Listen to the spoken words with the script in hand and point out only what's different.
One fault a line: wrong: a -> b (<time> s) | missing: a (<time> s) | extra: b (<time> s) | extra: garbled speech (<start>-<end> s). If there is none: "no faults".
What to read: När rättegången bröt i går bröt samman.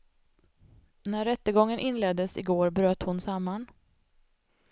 wrong: bröt -> inleddes (1.8 s)
extra: hon (3.0 s)